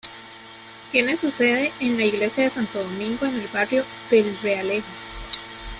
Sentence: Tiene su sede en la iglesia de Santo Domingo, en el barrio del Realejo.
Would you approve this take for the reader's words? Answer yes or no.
yes